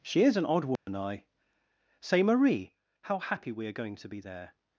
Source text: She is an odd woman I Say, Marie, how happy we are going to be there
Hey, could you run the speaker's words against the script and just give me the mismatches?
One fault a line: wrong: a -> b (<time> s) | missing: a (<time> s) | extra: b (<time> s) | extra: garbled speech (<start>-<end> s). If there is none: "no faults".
no faults